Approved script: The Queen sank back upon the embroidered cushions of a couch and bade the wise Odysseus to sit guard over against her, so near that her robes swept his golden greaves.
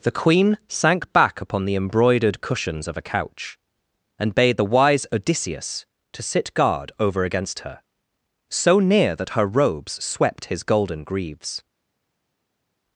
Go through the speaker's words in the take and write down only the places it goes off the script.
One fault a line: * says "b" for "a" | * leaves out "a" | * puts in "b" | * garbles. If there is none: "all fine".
all fine